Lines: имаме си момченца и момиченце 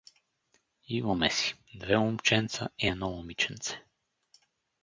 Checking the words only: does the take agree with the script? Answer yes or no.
no